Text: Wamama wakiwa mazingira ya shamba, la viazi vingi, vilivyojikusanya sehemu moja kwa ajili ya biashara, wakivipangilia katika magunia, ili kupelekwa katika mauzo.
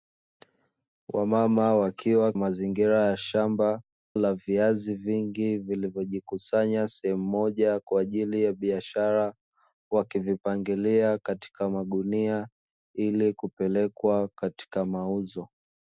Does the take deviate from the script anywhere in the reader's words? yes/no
no